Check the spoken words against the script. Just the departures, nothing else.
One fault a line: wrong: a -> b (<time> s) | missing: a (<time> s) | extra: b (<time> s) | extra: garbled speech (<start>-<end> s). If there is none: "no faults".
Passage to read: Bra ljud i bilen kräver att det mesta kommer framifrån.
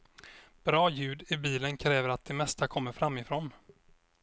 no faults